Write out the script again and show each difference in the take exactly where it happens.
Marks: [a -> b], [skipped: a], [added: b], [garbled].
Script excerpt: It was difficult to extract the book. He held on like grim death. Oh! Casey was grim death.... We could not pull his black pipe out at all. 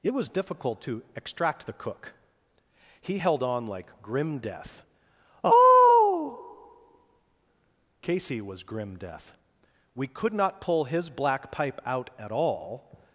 It was difficult to extract the [book. -> cook] He held on like grim death. Oh! Casey was grim death.... We could not pull his black pipe out at all.